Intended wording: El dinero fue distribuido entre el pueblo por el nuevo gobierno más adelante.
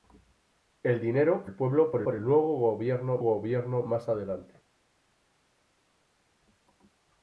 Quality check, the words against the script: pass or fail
fail